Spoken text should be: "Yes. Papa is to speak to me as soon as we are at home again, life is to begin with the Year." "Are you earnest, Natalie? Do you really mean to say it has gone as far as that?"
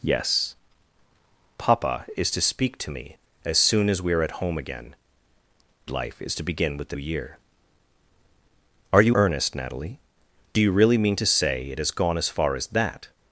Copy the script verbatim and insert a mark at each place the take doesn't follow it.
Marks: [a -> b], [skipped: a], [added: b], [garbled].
"Yes. Papa is to speak to me as soon as we are at home again, life is to begin with the Year." "Are you earnest, Natalie? Do you really mean to say it has gone as far as that?"